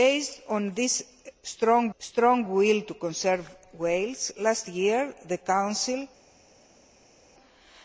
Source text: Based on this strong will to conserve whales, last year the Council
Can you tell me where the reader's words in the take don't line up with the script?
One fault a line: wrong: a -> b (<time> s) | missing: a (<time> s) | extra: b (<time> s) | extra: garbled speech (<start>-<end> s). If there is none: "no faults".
extra: strong (2.0 s)